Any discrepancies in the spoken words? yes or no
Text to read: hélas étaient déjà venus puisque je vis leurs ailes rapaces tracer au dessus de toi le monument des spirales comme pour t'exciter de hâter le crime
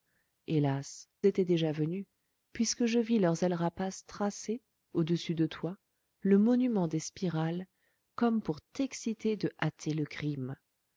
no